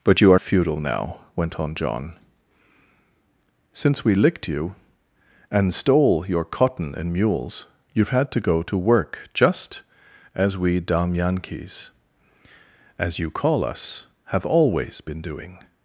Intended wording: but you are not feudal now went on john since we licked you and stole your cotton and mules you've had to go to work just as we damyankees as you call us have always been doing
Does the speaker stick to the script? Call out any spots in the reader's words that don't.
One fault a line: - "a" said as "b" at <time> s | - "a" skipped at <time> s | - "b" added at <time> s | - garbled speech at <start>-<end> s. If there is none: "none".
- "not" skipped at 0.4 s